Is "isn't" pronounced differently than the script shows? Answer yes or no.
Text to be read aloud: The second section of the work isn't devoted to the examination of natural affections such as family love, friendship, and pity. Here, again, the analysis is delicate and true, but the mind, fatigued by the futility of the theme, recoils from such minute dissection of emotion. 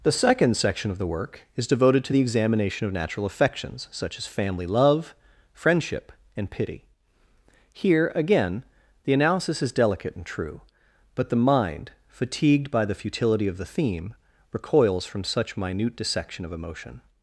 yes